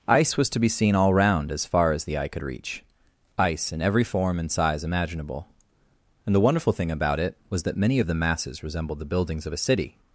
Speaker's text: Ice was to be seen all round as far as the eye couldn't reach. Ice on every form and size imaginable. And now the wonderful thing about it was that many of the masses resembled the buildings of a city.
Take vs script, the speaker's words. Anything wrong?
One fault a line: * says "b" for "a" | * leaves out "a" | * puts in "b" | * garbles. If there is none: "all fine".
* says "could" for "couldn't"
* says "in" for "on"
* leaves out "now"